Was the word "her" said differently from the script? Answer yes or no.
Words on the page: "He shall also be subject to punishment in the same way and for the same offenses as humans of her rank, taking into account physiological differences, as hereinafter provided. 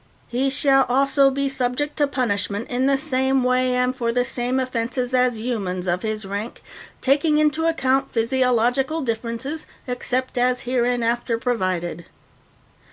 yes